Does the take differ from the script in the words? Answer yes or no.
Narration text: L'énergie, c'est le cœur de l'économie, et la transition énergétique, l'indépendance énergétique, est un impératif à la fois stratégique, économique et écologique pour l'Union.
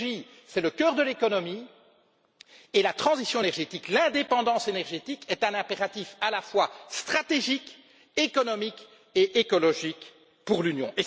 no